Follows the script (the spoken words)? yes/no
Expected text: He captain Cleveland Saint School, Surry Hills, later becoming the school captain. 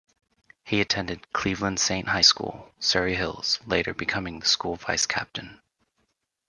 no